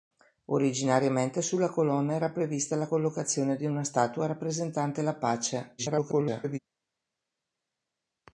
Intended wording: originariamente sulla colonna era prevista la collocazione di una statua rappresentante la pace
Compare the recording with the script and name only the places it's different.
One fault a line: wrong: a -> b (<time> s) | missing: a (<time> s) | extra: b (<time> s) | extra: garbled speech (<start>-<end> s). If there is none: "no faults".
extra: garbled speech (5.8-6.6 s)